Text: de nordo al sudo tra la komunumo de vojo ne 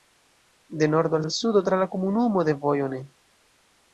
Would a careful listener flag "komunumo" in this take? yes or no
no